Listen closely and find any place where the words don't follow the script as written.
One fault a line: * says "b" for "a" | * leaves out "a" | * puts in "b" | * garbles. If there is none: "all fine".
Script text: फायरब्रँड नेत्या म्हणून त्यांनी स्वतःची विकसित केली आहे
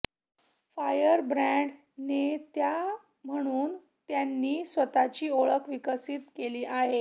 * puts in "ओळख"